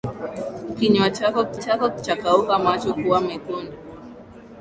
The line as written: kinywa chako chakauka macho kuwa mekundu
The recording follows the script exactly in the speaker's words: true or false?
false